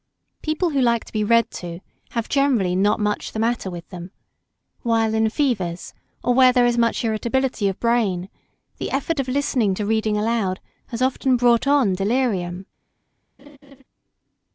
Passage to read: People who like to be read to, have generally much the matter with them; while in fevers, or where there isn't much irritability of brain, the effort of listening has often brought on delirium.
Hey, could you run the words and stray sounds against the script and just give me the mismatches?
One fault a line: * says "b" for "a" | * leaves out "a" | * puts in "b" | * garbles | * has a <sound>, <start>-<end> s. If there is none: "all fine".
* puts in "not"
* says "is" for "isn't"
* puts in "to reading aloud"
* has a laugh, 13.4-13.8 s